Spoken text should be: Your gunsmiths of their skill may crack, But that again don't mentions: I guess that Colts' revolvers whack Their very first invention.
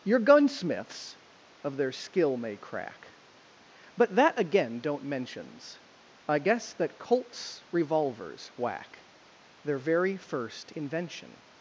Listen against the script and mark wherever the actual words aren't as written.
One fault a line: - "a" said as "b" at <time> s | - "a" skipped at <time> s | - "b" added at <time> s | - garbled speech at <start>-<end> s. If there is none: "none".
none